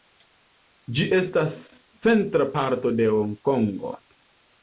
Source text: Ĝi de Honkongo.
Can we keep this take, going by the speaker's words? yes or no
no